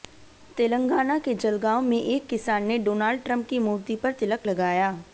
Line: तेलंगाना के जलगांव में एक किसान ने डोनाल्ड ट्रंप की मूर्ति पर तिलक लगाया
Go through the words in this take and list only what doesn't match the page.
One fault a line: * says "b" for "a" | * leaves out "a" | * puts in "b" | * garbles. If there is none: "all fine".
all fine